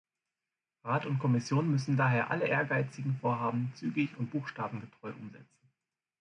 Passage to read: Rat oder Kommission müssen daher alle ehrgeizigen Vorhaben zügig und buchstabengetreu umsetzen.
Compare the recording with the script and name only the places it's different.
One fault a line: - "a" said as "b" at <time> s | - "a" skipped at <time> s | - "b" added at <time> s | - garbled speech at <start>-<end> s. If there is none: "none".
- "oder" said as "und" at 1.1 s